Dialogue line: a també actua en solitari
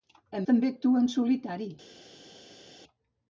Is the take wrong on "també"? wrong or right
right